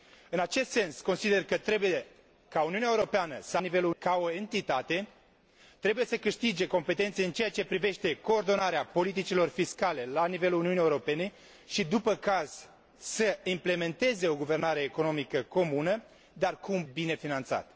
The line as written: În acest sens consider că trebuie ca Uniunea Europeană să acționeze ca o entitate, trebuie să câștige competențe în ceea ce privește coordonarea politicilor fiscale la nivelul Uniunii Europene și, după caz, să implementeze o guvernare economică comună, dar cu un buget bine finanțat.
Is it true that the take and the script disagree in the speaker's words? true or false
true